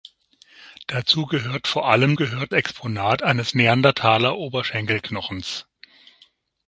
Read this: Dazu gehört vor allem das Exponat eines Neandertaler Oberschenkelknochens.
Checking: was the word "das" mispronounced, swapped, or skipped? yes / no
yes